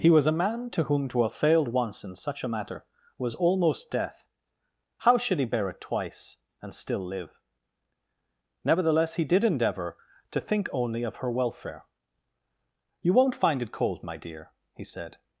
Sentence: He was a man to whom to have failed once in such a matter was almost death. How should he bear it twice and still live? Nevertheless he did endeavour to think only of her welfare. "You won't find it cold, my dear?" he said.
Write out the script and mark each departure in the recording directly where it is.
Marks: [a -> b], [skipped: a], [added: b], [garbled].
He was a man to whom to have failed once in such a matter was almost death. How should he bear it twice and still live? Nevertheless he did endeavour to think only of her welfare. "You won't find it cold, my dear?" he said.